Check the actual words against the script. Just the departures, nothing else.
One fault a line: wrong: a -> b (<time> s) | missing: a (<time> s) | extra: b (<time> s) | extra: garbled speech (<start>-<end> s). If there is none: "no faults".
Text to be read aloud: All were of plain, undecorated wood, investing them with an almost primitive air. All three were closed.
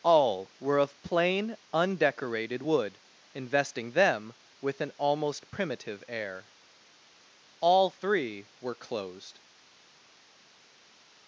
no faults